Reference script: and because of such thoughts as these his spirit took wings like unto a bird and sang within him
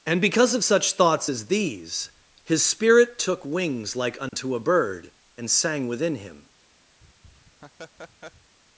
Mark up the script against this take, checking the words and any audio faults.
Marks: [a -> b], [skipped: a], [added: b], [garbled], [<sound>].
and because of such thoughts as these his spirit took wings like unto [dropout] a bird and sang within him [laugh]